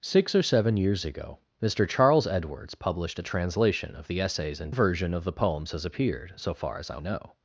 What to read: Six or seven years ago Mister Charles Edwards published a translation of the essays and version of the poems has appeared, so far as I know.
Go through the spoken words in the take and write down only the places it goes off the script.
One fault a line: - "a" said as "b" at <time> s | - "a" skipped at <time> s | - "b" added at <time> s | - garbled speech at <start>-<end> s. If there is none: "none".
none